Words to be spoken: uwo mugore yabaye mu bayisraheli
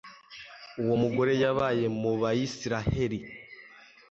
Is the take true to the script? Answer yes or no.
yes